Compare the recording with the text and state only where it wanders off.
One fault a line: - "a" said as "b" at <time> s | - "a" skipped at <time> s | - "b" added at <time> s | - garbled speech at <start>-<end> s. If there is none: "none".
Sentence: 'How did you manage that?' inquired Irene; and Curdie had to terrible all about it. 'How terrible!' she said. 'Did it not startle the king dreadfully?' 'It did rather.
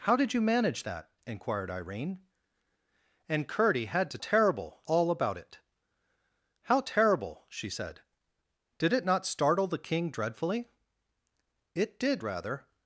none